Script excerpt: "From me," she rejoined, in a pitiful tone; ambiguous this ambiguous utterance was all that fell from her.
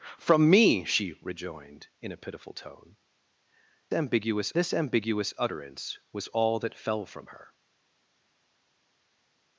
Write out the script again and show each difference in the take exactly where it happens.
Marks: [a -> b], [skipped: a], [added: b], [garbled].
"From me," she rejoined, in a pitiful tone; ambiguous this ambiguous utterance was all that fell from her.